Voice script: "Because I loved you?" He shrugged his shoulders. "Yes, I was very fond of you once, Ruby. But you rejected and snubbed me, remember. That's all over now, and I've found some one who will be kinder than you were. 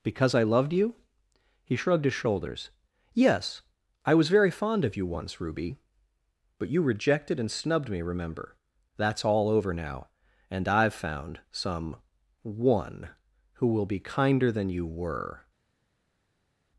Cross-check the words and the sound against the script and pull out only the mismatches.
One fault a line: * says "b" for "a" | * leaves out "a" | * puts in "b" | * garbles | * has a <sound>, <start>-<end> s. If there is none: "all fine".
all fine